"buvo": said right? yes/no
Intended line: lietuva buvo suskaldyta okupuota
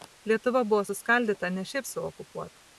yes